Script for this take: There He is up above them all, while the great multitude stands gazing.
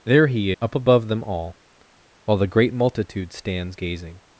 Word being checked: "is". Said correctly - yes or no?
no